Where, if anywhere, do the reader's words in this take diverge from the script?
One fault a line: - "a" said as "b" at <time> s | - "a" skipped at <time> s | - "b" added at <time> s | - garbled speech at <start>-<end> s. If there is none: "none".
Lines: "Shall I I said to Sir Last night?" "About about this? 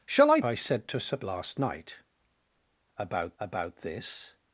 none